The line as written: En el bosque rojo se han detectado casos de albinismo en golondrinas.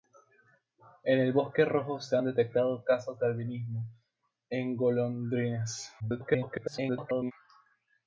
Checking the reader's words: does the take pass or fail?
fail